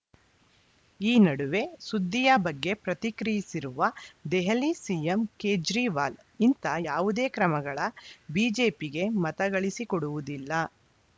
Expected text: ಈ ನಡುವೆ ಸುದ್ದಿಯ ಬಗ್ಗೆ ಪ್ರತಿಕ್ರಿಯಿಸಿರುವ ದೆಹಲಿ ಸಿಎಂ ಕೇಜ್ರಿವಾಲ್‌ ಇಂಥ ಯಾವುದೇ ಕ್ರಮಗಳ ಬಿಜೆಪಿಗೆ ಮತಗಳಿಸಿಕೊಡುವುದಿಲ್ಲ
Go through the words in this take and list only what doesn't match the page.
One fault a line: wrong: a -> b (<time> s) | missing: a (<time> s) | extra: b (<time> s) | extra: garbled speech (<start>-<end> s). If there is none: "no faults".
no faults